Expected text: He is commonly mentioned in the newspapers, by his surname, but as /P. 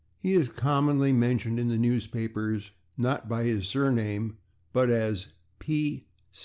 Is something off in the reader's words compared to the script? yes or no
yes